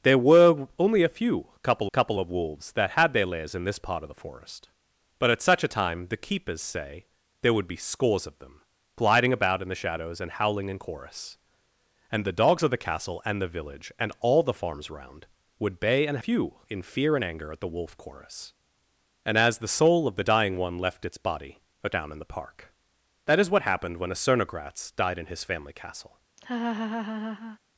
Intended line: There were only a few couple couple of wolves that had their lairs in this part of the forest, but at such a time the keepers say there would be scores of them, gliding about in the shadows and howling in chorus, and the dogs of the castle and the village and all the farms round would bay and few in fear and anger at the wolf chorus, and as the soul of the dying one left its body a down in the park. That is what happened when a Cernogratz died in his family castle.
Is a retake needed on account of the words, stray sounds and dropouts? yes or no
yes